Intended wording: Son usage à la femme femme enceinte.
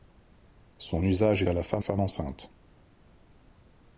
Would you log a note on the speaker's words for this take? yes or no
no